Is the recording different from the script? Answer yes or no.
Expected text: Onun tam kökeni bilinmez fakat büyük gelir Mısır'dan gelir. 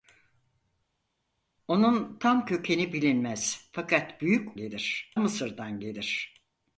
no